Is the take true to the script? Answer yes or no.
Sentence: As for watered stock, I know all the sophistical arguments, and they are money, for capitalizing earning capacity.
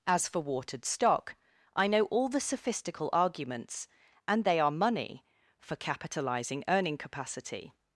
yes